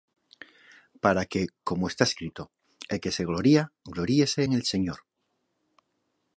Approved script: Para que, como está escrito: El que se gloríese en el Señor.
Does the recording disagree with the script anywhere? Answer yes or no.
yes